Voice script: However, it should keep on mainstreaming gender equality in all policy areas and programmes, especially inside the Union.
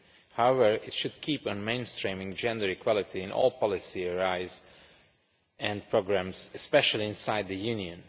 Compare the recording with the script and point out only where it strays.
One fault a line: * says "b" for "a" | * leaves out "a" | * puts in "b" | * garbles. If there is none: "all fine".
all fine